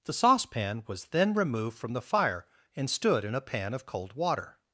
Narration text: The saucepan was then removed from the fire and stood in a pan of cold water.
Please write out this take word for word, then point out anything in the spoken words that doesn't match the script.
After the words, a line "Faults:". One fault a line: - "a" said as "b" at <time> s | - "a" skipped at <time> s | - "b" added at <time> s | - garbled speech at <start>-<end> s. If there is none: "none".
The saucepan was then removed from the fire and stood in a pan of cold water.
Faults:
none